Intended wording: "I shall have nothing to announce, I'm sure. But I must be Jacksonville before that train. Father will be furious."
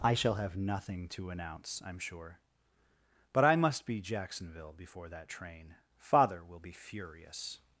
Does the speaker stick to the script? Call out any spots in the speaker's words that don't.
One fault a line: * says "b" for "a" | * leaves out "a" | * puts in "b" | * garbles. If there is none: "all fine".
all fine